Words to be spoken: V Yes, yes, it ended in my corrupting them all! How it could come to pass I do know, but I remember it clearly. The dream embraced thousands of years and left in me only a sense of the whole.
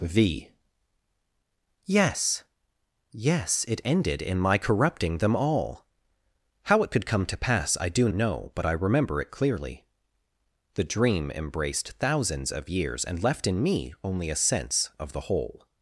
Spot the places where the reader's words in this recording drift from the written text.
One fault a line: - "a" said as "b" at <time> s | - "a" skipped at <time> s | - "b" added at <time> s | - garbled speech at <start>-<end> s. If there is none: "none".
none